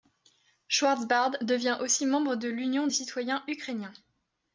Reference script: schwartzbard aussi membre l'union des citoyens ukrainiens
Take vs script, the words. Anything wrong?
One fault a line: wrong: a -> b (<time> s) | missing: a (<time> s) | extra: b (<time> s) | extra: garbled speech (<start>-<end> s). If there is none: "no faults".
extra: devient (1.4 s)
extra: de (2.4 s)